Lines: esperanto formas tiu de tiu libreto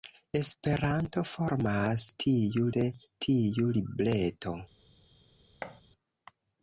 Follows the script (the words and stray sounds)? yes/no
no